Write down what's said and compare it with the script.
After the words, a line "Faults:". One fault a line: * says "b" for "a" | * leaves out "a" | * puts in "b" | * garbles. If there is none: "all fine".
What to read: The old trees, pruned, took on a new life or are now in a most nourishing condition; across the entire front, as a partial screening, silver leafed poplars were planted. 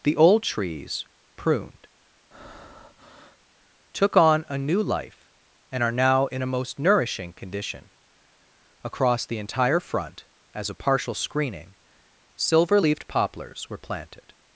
The old trees, pruned, took on a new life and are now in a most nourishing condition; across the entire front, as a partial screening, silver leafed poplars were planted.
Faults:
* says "and" for "or"